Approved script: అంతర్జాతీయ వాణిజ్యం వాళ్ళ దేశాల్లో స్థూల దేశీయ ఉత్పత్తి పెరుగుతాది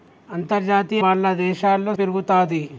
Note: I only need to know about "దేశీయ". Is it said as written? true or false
false